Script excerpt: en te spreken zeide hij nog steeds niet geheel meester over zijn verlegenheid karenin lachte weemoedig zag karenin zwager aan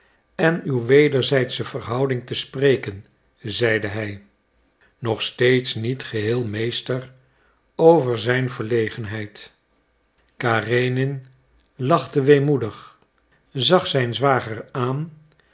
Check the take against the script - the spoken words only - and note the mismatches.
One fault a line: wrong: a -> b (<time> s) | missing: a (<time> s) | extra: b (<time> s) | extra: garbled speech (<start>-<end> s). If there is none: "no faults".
extra: uw wederzijdsche verhouding (0.6 s)
wrong: karenin -> zijn (13.9 s)